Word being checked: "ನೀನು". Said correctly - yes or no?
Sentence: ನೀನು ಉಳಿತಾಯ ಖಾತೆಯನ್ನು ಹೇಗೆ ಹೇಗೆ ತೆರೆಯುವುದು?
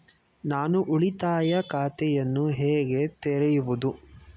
no